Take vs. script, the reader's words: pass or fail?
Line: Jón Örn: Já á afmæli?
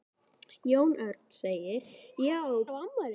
pass